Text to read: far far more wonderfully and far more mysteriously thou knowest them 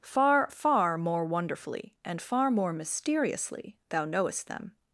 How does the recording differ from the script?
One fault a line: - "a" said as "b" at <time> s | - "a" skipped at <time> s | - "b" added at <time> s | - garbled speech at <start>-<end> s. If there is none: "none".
none